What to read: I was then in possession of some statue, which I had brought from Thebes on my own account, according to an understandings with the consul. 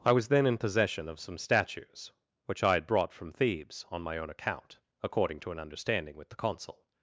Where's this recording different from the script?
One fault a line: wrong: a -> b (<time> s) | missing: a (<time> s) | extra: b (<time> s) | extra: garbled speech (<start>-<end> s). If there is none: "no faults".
wrong: statue -> statues (1.4 s)
wrong: understandings -> understanding (5.6 s)